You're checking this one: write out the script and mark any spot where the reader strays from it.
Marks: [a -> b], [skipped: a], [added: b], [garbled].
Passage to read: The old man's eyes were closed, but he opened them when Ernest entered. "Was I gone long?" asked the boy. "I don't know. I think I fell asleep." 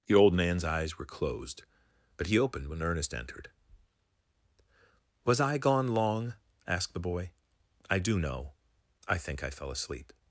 The old man's eyes were closed, but he opened [skipped: them] when Ernest entered. "Was I gone long?" asked the boy. "I [don't -> do] know. I think I fell asleep."